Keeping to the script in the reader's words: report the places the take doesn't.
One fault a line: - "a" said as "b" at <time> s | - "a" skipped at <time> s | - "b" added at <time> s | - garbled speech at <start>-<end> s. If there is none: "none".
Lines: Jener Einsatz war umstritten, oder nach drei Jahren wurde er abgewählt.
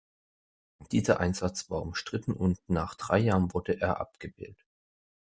- "Jener" said as "Dieser" at 0.9 s
- "oder" said as "und" at 2.3 s